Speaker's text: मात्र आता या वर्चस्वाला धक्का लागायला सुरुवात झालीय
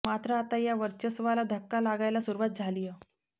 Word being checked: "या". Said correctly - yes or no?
yes